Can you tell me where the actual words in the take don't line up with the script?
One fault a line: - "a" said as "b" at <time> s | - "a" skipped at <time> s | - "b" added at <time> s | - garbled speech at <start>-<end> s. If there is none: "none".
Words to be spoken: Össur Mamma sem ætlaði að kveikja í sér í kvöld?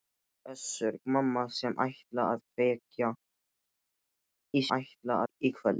- "sér" said as "ætlaði" at 4.8 s